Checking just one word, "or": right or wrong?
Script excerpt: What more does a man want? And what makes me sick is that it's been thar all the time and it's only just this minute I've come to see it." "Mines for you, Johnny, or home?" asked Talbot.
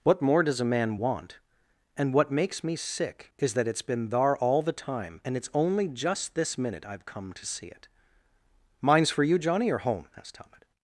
right